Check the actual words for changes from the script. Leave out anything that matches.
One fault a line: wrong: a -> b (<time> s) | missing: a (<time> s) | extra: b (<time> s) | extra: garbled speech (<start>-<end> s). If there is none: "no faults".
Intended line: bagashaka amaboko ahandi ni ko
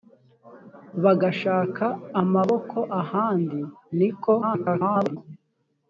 extra: garbled speech (4.4-5.2 s)